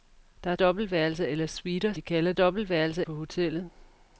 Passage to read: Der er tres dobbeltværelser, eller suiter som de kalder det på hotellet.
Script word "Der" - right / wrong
right